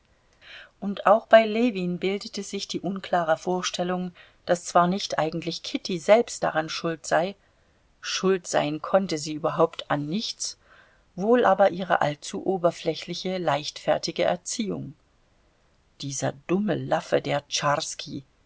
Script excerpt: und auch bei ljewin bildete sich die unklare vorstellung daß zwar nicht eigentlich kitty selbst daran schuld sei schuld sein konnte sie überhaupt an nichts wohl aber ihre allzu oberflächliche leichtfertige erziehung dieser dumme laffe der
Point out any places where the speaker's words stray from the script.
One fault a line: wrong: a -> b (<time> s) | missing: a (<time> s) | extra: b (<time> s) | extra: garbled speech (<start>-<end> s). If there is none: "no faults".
no faults